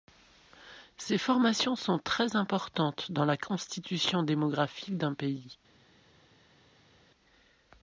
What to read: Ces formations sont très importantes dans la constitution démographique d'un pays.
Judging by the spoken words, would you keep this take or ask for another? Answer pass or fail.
pass